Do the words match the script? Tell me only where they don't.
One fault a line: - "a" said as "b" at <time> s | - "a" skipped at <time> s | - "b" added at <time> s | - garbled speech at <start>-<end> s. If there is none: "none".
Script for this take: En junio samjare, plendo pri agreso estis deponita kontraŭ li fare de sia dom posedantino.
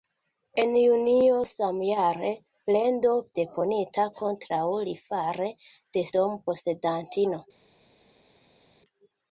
- "pri agreso estis" skipped at 3.1 s
- "sia" skipped at 6.1 s